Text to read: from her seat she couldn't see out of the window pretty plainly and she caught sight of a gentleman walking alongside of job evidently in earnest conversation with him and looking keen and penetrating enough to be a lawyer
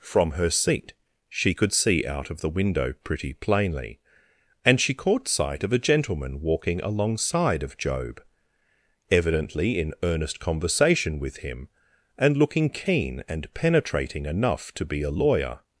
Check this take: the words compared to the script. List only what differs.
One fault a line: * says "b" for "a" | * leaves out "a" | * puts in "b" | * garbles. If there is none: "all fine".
* says "could" for "couldn't"